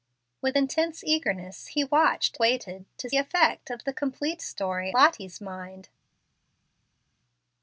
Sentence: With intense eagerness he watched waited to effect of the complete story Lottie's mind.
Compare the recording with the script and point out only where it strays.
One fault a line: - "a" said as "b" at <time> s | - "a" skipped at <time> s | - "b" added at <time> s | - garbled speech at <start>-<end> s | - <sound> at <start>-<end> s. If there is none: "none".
none